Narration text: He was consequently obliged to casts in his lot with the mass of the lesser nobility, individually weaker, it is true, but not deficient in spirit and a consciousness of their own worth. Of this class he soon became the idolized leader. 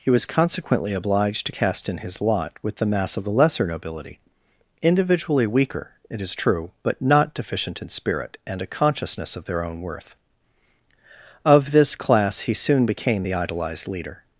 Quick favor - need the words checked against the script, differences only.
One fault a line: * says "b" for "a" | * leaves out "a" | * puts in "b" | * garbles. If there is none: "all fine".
* says "cast" for "casts"